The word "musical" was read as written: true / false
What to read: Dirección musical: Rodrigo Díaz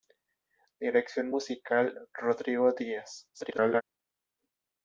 true